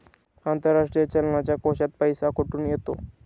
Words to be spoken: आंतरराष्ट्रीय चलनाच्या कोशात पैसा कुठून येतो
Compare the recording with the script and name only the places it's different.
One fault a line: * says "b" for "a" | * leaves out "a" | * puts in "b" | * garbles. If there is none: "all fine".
all fine